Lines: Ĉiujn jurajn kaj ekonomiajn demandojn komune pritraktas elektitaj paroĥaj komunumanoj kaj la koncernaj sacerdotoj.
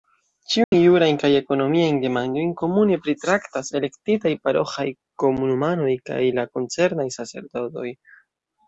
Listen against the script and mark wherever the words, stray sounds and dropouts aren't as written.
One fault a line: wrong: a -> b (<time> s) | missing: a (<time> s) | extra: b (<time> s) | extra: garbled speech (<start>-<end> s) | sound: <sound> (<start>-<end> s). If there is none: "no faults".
sound: dropout (0.6-0.7 s)